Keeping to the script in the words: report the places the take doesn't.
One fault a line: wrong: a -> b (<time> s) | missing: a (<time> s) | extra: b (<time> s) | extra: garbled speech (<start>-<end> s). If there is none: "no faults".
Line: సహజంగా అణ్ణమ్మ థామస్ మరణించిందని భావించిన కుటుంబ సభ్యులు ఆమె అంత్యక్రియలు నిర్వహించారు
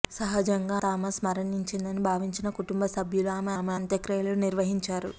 missing: అణ్ణమ్మ (0.8 s)
extra: ఆమె (3.5 s)